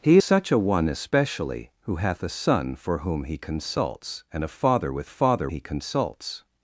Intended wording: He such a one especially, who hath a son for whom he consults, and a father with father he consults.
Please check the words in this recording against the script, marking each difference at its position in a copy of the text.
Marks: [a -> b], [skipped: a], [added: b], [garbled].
He such a one especially, who hath a son for whom he consults, and a father with father he consults.